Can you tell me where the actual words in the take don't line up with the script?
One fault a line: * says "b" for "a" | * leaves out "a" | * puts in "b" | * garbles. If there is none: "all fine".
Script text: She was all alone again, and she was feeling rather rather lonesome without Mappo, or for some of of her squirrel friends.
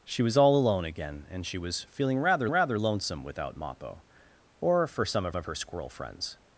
all fine